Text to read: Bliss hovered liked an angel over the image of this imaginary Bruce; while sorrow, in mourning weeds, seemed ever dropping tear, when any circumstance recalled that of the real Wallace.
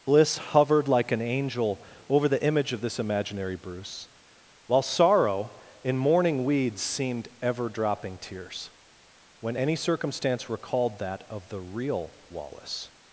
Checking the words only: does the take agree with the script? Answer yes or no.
no